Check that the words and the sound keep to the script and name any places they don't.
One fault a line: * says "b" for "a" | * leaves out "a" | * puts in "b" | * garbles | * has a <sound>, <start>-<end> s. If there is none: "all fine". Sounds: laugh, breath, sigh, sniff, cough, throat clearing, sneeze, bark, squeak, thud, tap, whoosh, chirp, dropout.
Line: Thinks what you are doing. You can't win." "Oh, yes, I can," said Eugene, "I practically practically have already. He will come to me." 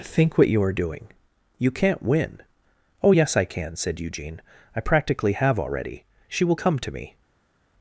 * says "Think" for "Thinks"
* leaves out "practically"
* says "She" for "He"